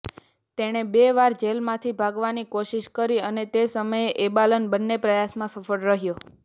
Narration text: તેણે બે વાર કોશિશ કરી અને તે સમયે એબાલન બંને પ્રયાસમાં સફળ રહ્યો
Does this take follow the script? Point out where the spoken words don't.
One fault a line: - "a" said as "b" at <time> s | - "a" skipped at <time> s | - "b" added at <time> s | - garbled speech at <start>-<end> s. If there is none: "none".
- "જેલમાંથી ભાગવાની" added at 1.4 s